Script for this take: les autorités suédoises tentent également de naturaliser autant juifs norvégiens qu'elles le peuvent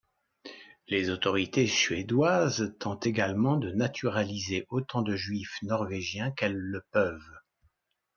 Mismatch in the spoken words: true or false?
true